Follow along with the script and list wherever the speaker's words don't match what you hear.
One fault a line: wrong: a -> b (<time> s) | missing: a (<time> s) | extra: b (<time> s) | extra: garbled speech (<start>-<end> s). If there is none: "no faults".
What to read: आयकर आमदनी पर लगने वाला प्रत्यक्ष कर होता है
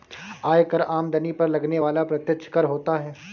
no faults